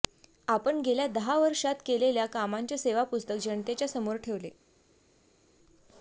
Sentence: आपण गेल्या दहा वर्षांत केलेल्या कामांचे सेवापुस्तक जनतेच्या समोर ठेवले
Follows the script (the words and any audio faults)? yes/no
yes